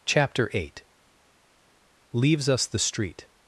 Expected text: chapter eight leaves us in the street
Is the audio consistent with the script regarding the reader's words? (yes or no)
no